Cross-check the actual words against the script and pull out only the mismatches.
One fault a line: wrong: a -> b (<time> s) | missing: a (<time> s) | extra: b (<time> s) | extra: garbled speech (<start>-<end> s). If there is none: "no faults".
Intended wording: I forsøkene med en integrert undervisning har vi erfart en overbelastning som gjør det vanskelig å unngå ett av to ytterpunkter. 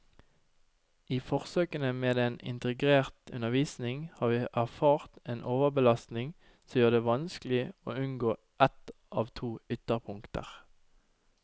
no faults